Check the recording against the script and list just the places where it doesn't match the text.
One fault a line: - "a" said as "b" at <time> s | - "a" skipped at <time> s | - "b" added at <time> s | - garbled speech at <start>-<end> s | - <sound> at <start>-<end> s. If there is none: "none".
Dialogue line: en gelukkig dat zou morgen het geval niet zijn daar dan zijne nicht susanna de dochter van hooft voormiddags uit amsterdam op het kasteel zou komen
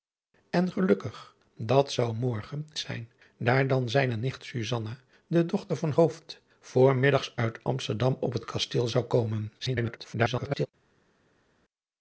- "het geval niet" skipped at 2.7 s
- garbled speech at 9.6-10.7 s